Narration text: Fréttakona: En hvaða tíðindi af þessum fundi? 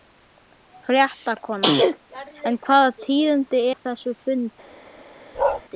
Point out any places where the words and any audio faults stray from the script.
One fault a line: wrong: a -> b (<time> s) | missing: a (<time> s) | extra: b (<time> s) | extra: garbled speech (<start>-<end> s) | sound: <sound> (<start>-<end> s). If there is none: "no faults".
sound: bark (5.3-5.6 s)